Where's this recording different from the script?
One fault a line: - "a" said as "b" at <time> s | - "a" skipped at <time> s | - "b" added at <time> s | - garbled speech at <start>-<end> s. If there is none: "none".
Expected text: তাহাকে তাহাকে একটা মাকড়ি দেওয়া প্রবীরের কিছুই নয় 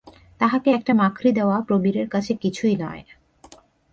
- "তাহাকে" skipped at 0.7 s
- "কাছে" added at 2.1 s